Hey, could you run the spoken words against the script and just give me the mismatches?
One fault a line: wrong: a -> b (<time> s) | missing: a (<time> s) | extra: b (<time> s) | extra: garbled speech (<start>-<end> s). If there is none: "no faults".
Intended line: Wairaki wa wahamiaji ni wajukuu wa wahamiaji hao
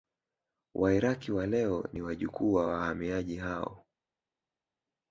wrong: wahamiaji -> leo (1.5 s)